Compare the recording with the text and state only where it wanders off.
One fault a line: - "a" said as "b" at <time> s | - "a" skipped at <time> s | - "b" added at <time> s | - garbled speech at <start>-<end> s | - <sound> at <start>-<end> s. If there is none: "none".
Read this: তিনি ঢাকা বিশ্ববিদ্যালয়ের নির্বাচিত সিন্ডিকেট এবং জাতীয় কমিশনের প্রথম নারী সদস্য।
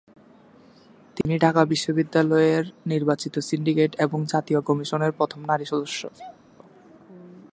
- dropout at 1.2-1.3 s
- sneeze at 6.1-6.4 s